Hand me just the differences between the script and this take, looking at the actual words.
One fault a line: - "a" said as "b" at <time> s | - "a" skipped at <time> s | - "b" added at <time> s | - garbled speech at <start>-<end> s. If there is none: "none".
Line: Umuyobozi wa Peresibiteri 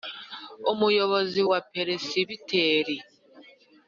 none